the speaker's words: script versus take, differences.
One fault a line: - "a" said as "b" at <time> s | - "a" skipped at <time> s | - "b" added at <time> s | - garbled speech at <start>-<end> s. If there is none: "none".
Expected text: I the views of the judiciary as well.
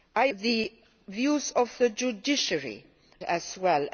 none